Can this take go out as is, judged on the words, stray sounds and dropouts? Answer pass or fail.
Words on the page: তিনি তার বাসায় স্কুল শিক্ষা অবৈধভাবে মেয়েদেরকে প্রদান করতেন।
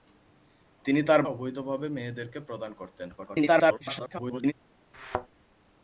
fail